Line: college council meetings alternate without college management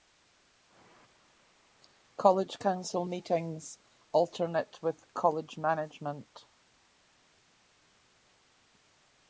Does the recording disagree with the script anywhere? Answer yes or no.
yes